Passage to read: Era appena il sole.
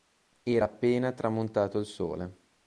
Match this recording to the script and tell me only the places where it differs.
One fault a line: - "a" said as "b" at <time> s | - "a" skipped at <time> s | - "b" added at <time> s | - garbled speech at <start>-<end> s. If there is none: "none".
- "tramontato" added at 1.1 s